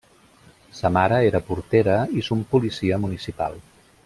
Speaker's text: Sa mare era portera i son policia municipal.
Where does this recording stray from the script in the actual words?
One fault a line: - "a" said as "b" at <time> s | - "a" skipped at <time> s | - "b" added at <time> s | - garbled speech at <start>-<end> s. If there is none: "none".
none